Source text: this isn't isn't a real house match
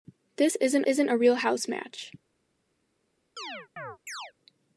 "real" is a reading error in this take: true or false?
false